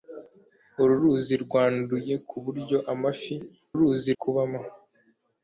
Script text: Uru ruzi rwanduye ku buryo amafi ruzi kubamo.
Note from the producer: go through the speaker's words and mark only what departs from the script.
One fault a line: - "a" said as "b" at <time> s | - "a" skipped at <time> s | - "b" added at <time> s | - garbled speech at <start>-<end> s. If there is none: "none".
none